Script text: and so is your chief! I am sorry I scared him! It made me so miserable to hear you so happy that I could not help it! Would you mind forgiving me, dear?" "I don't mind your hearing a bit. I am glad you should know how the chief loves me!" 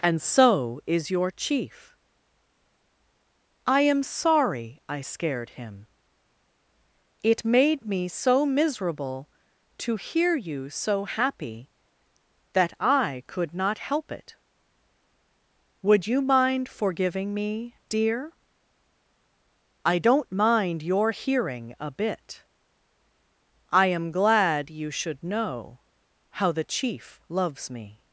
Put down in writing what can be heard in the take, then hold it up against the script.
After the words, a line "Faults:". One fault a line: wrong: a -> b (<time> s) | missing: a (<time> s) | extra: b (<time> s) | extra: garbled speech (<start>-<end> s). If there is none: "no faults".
and so is your chief! I am sorry I scared him! It made me so miserable to hear you so happy that I could not help it! Would you mind forgiving me, dear?" "I don't mind your hearing a bit. I am glad you should know how the chief loves me!"
Faults:
no faults